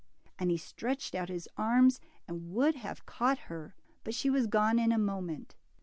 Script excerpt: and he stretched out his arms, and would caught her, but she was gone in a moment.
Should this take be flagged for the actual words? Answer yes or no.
yes